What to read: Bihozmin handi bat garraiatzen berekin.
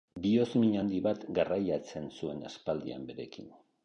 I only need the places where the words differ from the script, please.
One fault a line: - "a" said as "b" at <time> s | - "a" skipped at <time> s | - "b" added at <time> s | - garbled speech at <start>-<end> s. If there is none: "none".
- "zuen aspaldian" added at 2.2 s